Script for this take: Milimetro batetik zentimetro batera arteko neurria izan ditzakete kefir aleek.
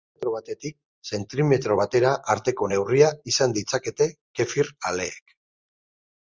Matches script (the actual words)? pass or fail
pass